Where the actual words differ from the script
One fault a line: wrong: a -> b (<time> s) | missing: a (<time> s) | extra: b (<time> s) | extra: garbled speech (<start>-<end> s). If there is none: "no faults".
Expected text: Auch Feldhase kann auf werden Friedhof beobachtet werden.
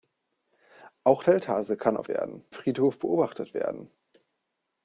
no faults